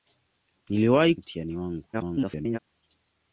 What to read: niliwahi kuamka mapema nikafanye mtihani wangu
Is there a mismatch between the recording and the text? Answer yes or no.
yes